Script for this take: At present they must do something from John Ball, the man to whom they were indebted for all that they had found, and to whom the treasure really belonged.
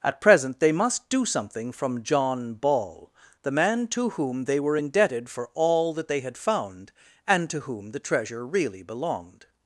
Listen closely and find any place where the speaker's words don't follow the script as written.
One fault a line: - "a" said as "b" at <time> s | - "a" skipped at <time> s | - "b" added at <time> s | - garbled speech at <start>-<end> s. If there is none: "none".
none